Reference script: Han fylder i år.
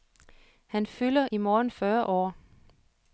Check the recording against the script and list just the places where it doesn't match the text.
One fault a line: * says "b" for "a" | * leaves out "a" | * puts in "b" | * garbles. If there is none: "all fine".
* puts in "morgen fyrre"